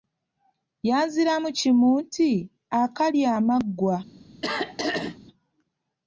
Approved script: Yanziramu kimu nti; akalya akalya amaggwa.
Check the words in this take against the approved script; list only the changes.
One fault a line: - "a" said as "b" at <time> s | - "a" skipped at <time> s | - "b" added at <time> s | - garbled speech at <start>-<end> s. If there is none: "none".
- "akalya" skipped at 3.3 s